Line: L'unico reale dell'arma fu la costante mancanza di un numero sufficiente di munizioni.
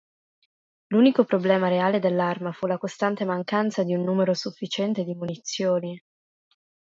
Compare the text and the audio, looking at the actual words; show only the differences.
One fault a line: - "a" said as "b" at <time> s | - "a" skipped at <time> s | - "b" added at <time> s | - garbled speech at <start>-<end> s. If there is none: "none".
- "problema" added at 1.2 s